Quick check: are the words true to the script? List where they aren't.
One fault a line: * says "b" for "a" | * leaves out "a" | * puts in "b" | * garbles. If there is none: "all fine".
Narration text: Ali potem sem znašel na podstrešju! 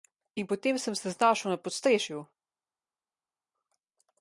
* says "In" for "Ali"
* puts in "se"